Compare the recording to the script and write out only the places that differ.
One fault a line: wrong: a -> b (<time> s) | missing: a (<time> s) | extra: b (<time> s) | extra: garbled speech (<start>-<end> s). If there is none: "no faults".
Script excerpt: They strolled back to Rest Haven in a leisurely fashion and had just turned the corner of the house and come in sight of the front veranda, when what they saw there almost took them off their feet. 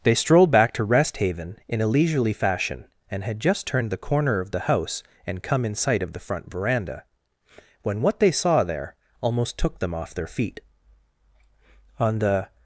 extra: On the (12.0 s)